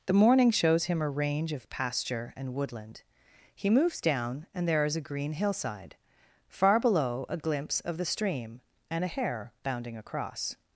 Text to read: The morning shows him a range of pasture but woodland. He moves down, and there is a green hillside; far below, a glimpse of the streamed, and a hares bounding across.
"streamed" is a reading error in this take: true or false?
true